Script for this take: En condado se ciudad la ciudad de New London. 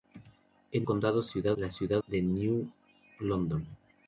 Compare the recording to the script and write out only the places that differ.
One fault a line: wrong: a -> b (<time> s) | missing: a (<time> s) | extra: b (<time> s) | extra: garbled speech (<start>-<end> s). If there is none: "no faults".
no faults